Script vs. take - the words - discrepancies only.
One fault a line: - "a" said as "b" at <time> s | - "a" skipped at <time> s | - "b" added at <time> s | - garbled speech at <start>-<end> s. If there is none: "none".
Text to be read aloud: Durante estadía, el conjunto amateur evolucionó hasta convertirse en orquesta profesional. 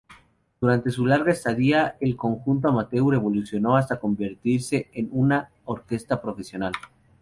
- "su larga" added at 0.9 s
- "una" added at 5.1 s